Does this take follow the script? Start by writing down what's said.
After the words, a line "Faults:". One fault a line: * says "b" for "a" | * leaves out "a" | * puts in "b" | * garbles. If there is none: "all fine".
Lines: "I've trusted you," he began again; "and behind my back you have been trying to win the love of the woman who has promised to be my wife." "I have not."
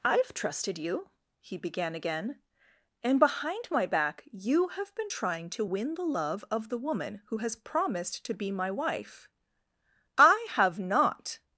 "I've trusted you," he began again; "and behind my back you have been trying to win the love of the woman who has promised to be my wife." "I have not."
Faults:
all fine